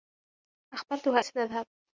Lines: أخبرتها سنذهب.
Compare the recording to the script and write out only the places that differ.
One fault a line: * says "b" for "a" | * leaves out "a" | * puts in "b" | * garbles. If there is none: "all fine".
all fine